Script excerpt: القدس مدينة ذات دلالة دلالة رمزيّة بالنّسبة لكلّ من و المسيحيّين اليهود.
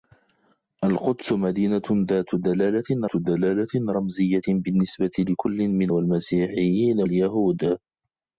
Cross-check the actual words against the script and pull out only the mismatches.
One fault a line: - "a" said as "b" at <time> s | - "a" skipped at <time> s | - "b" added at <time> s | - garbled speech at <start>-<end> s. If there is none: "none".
none